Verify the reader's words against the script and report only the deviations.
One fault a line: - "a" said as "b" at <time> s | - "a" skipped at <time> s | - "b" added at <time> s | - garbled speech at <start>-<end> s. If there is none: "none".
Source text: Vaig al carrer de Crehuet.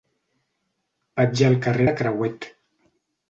none